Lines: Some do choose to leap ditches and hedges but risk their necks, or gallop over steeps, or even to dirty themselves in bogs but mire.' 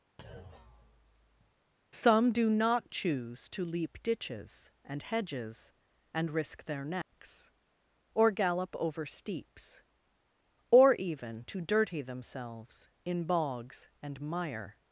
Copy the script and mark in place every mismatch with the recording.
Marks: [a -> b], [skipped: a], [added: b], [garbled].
Some do [added: not] choose to leap ditches and hedges [but -> and] risk their necks, or gallop over steeps, or even to dirty themselves in bogs [but -> and] mire.'